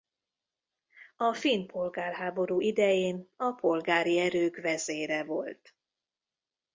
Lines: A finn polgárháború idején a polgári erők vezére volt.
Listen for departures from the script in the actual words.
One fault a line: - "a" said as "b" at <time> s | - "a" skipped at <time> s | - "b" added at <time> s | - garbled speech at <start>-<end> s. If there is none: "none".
none